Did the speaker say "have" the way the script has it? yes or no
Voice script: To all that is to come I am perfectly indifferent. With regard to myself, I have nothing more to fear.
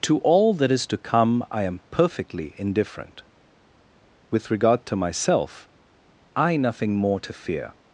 no